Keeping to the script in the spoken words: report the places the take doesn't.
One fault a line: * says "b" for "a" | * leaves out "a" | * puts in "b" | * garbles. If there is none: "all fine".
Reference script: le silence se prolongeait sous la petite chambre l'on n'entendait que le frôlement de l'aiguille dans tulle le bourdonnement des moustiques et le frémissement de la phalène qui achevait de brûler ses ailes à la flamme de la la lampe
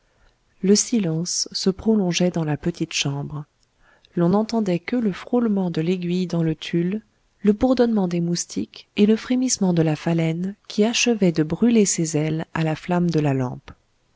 * says "dans" for "sous"
* puts in "le"
* leaves out "la"